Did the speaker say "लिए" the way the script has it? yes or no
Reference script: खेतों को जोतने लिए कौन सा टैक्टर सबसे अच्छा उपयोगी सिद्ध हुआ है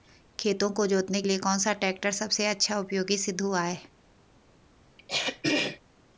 yes